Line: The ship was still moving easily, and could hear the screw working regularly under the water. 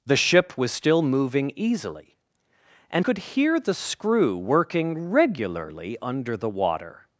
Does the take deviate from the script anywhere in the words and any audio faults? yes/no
no